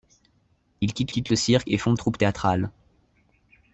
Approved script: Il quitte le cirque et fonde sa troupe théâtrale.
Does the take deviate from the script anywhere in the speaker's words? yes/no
yes